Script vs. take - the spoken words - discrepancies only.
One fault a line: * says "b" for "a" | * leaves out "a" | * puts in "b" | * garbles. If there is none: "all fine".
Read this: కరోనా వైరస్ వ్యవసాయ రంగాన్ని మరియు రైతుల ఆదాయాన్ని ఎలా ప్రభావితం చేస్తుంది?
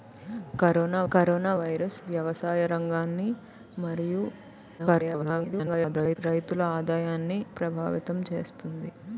* puts in "కరోనా"
* garbles
* leaves out "ఎలా"